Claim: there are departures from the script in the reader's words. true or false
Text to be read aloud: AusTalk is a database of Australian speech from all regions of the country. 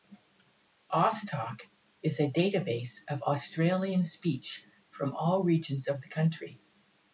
false